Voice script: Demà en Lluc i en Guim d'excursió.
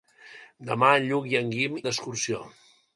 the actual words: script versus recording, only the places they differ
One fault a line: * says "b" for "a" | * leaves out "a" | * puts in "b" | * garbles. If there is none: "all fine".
all fine